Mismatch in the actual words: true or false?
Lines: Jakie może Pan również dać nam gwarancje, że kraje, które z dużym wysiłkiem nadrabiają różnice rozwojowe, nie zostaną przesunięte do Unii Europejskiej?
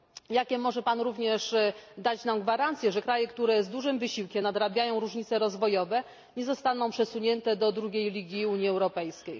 true